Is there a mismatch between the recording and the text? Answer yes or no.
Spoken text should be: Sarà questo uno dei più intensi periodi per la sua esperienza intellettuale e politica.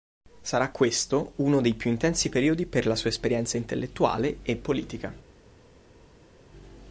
no